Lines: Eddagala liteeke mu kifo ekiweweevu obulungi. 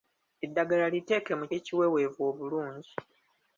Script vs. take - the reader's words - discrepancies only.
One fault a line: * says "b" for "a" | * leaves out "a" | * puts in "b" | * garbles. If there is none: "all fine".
* leaves out "kifo"